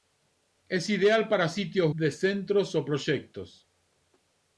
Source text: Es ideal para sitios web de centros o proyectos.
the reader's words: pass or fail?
fail